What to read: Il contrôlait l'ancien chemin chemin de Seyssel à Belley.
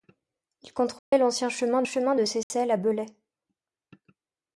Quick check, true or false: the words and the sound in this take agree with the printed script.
false